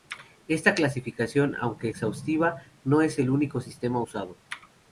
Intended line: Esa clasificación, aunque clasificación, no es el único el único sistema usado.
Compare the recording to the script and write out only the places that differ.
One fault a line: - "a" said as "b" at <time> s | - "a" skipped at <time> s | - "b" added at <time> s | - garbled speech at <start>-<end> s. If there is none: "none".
- "Esa" said as "Esta" at 0.5 s
- "clasificación" said as "exhaustiva" at 1.9 s
- "el único" skipped at 3.6 s